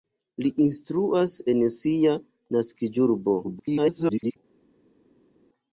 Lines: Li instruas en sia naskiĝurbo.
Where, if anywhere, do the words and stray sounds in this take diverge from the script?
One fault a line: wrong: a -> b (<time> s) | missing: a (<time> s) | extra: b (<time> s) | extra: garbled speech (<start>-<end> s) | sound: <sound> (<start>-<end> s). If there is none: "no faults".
extra: garbled speech (3.4-4.4 s)